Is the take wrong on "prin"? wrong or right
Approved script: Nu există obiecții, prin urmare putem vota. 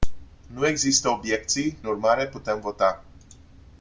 wrong